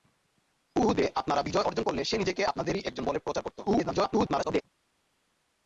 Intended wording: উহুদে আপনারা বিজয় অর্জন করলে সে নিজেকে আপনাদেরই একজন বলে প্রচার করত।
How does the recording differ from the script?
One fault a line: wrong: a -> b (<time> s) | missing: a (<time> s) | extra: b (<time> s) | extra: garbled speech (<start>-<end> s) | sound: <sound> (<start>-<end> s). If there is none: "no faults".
extra: garbled speech (3.7-4.6 s)